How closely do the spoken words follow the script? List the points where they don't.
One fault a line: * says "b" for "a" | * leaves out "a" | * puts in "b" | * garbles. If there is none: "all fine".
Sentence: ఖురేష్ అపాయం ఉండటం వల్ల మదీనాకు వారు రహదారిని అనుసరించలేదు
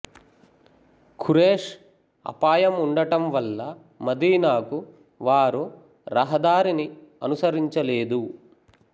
all fine